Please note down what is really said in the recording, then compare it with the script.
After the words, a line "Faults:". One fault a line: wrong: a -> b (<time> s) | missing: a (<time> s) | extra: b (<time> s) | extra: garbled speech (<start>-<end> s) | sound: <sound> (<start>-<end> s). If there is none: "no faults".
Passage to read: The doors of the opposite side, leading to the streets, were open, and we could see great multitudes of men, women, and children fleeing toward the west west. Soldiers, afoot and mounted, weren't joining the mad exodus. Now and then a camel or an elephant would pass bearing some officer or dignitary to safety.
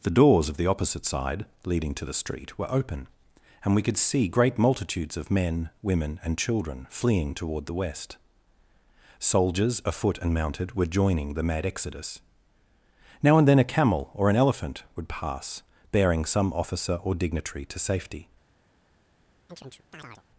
The doors of the opposite side, leading to the street, were open, and we could see great multitudes of men, women, and children fleeing toward the west. Soldiers, afoot and mounted, were joining the mad exodus. Now and then a camel or an elephant would pass bearing some officer or dignitary to safety.
Faults:
wrong: streets -> street (2.1 s)
missing: west (8.2 s)
wrong: weren't -> were (10.7 s)
sound: chirp (19.5-20.2 s)